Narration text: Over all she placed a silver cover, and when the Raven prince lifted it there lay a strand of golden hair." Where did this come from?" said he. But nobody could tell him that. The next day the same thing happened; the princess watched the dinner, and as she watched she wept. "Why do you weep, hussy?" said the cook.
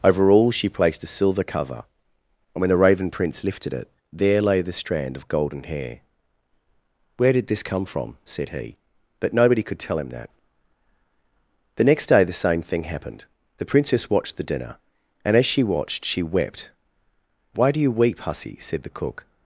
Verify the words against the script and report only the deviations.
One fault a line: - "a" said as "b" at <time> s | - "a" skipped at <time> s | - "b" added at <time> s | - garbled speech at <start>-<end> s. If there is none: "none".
- "a" said as "the" at 4.6 s